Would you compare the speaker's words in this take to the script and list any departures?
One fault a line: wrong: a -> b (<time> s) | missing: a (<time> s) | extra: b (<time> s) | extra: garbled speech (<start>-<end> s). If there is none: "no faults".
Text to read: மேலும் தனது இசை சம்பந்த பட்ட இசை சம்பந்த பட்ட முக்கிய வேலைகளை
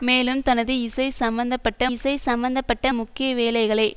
no faults